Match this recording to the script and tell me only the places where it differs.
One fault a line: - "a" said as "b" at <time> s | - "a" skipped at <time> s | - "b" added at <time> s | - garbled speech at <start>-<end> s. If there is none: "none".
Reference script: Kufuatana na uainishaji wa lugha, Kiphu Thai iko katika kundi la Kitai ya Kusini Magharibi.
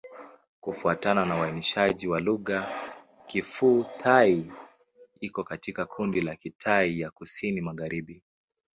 none